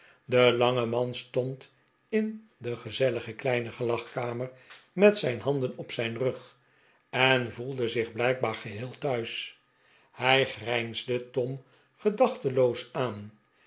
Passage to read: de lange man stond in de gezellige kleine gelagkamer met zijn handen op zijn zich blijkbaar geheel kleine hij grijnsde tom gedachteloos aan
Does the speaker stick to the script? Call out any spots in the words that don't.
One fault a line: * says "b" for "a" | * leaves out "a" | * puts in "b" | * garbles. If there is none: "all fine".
* puts in "rug en voelde"
* says "thuis" for "kleine"